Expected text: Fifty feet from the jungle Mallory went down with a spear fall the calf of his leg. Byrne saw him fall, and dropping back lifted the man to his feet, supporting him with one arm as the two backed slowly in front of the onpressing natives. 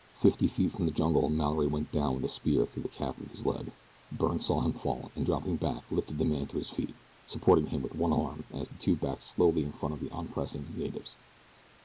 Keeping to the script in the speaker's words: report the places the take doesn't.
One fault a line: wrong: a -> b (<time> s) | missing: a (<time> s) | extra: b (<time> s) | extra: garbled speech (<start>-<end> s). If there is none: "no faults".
wrong: fall -> through (2.6 s)